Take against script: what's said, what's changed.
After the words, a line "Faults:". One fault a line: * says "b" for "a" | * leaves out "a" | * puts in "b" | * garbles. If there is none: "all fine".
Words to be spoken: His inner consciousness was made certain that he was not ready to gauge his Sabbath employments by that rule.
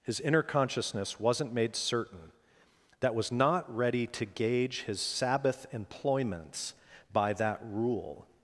His inner consciousness wasn't made certain that was not ready to gauge his Sabbath employments by that rule.
Faults:
* says "wasn't" for "was"
* leaves out "he"